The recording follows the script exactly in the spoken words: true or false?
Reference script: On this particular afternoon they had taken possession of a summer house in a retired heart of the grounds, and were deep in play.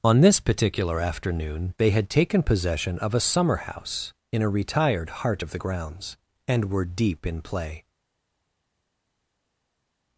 true